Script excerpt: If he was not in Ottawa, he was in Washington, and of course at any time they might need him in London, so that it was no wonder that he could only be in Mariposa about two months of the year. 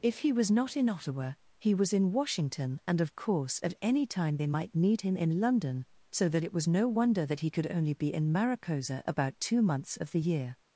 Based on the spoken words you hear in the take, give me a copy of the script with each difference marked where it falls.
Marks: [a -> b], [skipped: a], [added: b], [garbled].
If he was not in Ottawa, he was in Washington, and of course at any time they might need him in London, so that it was no wonder that he could only be in Mariposa about two months of the year.